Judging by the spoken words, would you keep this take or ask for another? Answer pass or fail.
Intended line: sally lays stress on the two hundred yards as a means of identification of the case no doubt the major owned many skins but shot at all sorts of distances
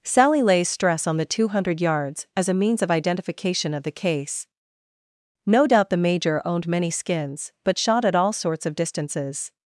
pass